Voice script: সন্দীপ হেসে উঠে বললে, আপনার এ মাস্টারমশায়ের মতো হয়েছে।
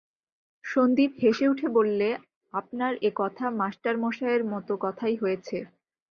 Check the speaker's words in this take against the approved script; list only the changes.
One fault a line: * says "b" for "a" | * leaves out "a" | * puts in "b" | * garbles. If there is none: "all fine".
* puts in "কথা"
* puts in "কথাই"